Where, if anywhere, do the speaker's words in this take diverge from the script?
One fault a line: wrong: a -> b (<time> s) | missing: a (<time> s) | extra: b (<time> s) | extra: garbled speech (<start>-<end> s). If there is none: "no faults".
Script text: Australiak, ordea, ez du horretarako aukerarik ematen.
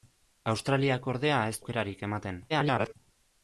missing: du horretarako (1.6 s)
extra: garbled speech (2.5-2.9 s)